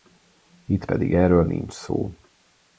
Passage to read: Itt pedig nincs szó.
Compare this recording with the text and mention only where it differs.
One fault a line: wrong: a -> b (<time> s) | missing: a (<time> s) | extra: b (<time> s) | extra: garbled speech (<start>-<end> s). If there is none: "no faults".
extra: erről (1.1 s)